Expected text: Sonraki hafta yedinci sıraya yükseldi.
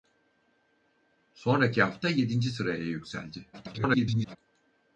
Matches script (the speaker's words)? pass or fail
fail